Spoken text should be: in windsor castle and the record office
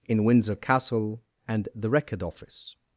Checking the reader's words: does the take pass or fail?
pass